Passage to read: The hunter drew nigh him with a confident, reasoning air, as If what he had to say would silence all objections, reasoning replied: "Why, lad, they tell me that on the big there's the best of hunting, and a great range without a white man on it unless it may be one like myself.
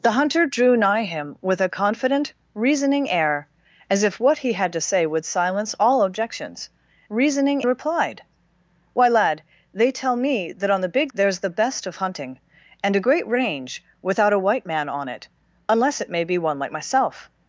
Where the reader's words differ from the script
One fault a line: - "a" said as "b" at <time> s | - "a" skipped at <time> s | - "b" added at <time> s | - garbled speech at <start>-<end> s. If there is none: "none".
none